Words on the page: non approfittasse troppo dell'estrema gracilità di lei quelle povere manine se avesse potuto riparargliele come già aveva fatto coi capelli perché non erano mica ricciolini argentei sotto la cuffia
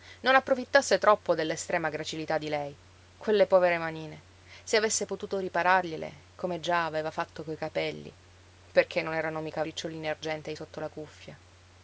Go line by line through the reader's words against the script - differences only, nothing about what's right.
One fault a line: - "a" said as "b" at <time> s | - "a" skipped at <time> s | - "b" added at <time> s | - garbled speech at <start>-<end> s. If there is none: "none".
none